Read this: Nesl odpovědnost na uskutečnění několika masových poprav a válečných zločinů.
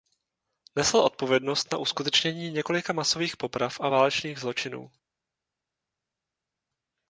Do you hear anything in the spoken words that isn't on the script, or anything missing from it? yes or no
no